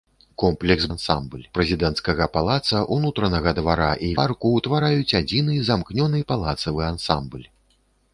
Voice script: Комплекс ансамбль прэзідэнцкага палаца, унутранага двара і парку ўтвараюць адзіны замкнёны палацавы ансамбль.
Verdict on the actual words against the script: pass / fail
pass